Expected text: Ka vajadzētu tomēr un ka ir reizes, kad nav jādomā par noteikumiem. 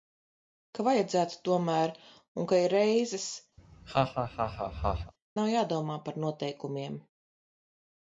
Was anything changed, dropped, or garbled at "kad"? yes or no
yes